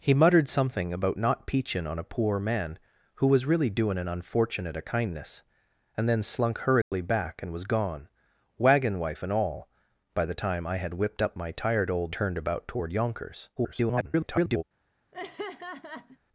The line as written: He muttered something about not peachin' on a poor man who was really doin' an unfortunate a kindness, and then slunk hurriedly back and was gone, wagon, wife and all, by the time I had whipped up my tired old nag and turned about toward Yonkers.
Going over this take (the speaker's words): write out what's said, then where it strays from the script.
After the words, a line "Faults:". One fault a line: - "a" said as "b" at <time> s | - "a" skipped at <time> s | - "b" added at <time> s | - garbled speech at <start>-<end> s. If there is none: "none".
He muttered something about not peachin' on a poor man who was really doin' an unfortunate a kindness, and then slunk hurriedly back and was gone, wagon, wife and all, by the time I had whipped up my tired old turned about toward Yonkers. [garbled]
Faults:
- "nag and" skipped at 12.2 s
- garbled speech at 13.6-14.6 s